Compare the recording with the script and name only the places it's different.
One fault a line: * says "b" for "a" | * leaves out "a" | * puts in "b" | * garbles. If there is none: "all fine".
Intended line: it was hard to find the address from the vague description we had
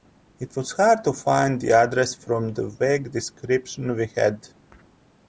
all fine